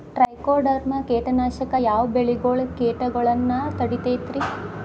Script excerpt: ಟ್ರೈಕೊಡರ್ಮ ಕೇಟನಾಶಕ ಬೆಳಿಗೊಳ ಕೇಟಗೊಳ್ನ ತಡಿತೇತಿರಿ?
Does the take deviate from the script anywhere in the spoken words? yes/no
yes